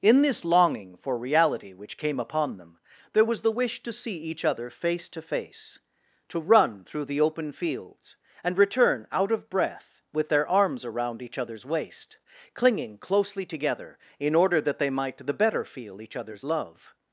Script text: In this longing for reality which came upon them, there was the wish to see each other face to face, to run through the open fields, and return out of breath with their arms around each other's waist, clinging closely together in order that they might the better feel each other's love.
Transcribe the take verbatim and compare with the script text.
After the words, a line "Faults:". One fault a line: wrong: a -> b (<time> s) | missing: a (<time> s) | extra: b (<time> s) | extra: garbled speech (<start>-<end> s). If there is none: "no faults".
In this longing for reality which came upon them, there was the wish to see each other face to face, to run through the open fields, and return out of breath with their arms around each other's waist, clinging closely together in order that they might the better feel each other's love.
Faults:
no faults